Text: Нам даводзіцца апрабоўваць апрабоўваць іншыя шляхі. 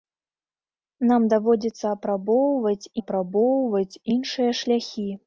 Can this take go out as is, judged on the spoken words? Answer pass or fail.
pass